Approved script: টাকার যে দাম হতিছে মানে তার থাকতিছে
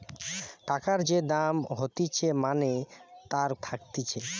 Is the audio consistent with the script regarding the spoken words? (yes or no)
yes